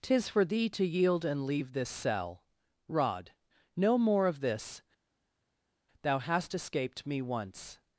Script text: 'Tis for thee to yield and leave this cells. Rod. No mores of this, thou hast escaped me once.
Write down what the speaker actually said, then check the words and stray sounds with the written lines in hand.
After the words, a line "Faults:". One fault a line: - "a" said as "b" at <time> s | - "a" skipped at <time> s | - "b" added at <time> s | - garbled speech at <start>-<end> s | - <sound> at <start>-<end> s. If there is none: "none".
'Tis for thee to yield and leave this cell. Rod. No more of this, thou hast escaped me once.
Faults:
- "cells" said as "cell" at 1.9 s
- "mores" said as "more" at 4.0 s